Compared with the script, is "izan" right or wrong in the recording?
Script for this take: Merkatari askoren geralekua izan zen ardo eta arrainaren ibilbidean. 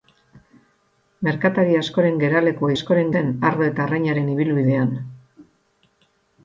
wrong